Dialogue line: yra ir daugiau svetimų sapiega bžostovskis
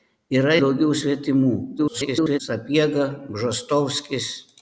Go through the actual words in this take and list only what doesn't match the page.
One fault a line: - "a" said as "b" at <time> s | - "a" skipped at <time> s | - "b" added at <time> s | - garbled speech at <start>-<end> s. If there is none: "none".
- "ir" skipped at 0.6 s
- garbled speech at 1.8-2.4 s